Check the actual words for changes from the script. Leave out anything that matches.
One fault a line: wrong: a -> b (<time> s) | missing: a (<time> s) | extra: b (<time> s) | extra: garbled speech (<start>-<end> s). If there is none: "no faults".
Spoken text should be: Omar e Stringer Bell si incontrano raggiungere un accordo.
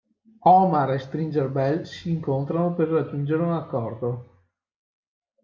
extra: per (2.7 s)